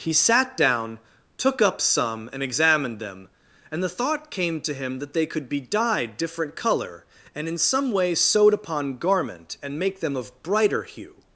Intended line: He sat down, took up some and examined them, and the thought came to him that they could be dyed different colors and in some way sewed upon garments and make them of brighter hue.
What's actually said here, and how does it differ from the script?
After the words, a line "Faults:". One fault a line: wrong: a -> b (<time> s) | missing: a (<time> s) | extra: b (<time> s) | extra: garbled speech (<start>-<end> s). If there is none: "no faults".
He sat down, took up some and examined them, and the thought came to him that they could be dyed different color and in some way sewed upon garment and make them of brighter hue.
Faults:
wrong: colors -> color (6.5 s)
wrong: garments -> garment (9.0 s)